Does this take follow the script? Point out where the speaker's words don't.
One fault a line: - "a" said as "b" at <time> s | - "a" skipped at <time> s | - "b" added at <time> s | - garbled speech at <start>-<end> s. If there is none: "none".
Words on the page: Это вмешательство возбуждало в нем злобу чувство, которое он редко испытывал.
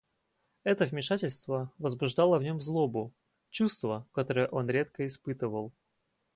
none